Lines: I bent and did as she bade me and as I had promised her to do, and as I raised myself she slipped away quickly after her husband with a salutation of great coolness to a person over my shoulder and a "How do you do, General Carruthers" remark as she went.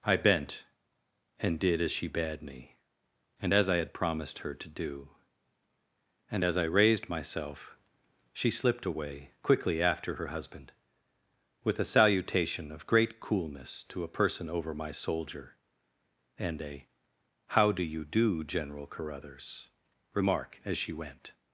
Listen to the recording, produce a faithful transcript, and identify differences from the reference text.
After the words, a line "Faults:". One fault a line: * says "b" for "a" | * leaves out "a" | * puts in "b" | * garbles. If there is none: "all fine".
I bent and did as she bade me and as I had promised her to do, and as I raised myself she slipped away quickly after her husband with a salutation of great coolness to a person over my soldier and a "How do you do, General Carruthers" remark as she went.
Faults:
* says "soldier" for "shoulder"